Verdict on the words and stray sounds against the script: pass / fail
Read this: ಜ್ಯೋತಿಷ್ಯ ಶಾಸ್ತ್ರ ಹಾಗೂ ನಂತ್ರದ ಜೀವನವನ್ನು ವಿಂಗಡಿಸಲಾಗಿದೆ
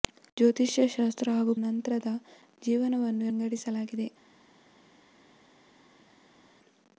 pass